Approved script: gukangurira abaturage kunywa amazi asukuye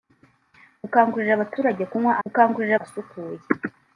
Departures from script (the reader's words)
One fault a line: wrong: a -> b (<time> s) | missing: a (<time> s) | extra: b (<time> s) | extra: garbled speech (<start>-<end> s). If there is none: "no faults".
wrong: amazi -> gukangurira (2.2 s)